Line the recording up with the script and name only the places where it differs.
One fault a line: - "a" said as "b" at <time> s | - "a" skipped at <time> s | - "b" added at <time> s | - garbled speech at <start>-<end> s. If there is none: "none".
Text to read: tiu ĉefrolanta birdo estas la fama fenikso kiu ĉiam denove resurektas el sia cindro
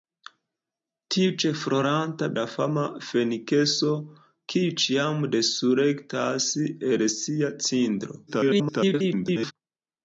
- "birdo estas" skipped at 2.3 s
- "denove" skipped at 5.2 s
- garbled speech at 8.3-9.5 s